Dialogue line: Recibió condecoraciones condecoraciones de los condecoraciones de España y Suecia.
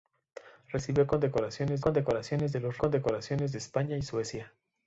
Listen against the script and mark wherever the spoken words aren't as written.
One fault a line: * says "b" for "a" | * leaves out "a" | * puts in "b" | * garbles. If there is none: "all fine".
all fine